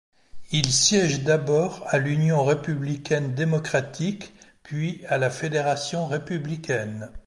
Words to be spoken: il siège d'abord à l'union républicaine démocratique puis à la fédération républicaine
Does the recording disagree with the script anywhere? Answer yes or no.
no